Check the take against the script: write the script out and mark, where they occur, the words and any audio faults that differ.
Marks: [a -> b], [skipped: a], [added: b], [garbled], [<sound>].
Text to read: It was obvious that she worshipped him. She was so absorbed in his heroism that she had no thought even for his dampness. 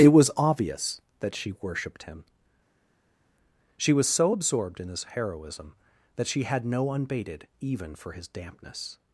It was obvious that she worshipped him. She was so absorbed in his heroism that she had no [thought -> unbated] even for his dampness.